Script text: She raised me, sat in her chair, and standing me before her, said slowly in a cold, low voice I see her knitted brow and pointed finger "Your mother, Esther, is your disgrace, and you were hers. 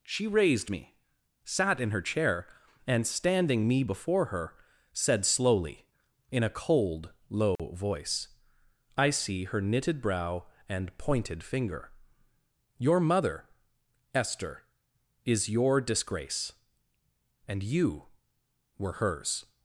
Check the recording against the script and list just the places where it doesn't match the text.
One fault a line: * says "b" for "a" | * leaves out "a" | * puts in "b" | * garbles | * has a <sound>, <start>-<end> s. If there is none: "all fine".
* has a dropout, 7.6-7.6 s